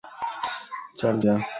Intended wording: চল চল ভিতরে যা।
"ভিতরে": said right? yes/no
no